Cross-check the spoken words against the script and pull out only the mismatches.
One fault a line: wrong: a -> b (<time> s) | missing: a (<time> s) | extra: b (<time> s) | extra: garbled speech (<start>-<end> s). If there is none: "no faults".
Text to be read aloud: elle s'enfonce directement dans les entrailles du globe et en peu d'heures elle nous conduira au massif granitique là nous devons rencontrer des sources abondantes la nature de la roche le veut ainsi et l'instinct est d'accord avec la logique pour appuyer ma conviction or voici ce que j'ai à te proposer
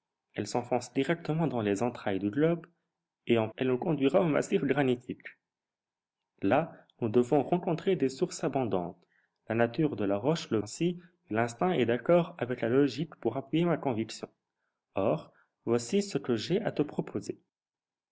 missing: peu d'heures (3.5 s)
missing: veut (10.6 s)